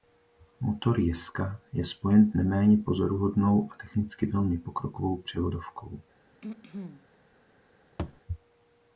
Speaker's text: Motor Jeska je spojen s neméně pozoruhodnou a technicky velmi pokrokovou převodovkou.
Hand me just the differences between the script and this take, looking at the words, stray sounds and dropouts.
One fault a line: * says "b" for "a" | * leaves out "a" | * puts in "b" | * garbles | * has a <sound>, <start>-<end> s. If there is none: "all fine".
* has a throat clearing, 6.4-7.1 s
* has a thud, 8.0-8.2 s